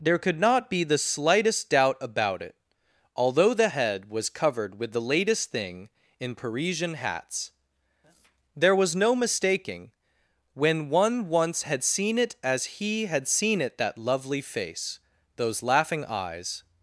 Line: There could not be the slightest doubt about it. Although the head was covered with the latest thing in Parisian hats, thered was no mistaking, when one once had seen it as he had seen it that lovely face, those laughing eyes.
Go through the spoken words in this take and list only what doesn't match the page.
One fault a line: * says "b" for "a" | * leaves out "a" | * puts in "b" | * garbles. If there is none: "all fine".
* says "there" for "thered"